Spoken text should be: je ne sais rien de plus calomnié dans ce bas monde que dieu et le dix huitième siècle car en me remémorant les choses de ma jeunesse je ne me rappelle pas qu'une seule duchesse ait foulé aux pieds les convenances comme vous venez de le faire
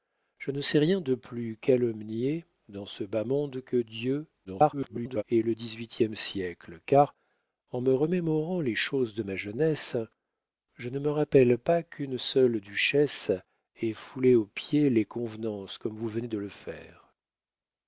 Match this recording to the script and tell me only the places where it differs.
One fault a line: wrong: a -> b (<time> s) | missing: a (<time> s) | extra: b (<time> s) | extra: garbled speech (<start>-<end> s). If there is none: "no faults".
extra: garbled speech (4.4-5.2 s)